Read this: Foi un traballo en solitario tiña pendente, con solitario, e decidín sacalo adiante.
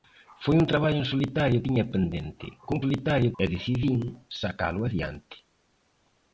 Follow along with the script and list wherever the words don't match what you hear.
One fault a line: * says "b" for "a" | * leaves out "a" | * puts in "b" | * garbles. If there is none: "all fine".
all fine